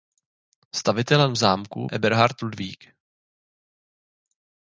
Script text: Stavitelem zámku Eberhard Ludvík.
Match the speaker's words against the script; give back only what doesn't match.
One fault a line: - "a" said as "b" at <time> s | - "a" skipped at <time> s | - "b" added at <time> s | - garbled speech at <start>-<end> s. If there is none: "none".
none